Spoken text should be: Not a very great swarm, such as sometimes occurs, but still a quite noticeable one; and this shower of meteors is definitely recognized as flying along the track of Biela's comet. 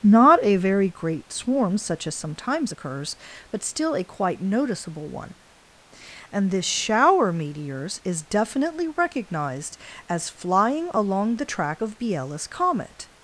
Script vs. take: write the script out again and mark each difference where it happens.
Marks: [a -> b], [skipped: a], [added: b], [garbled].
Not a very great swarm, such as sometimes occurs, but still a quite noticeable one; and this shower [skipped: of] meteors is definitely recognized as flying along the track of Biela's comet.